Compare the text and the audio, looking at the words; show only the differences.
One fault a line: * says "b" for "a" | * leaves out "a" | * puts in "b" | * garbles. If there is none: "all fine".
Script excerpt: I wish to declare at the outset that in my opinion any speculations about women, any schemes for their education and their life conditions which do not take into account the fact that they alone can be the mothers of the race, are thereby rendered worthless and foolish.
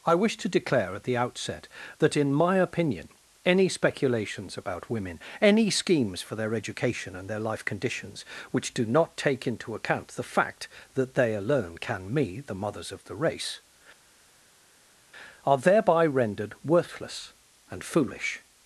* says "me" for "be"